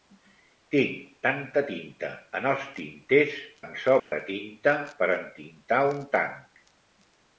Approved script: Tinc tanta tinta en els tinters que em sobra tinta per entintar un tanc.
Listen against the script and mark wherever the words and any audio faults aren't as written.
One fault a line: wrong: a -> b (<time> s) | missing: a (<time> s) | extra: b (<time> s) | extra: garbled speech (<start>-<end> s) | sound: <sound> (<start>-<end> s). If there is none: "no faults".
missing: que (3.4 s)
sound: dropout (4.0-4.1 s)